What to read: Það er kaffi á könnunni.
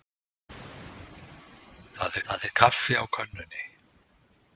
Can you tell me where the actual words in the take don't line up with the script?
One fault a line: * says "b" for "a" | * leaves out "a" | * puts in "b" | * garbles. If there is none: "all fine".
* puts in "það"